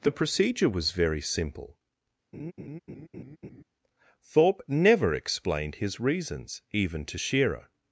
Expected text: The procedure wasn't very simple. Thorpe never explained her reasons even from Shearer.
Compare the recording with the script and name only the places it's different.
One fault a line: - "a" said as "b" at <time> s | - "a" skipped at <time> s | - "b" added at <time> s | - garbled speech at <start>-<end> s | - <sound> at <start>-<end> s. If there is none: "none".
- "wasn't" said as "was" at 0.7 s
- laugh at 2.3-3.6 s
- "her" said as "his" at 5.8 s
- "from" said as "to" at 7.1 s